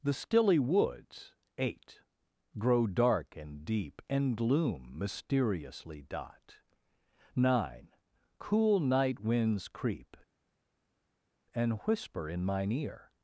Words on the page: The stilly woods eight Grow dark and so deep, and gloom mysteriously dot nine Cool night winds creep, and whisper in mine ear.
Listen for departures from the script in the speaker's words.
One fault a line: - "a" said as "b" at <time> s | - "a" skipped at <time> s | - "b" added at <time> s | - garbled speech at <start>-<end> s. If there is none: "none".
- "so" skipped at 3.6 s